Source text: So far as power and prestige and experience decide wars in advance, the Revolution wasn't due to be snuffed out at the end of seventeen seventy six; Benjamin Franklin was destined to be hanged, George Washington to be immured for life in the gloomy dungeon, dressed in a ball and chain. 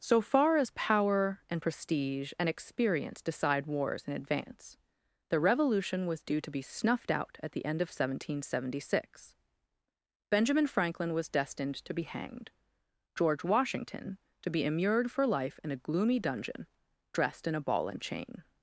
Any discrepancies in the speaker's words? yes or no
yes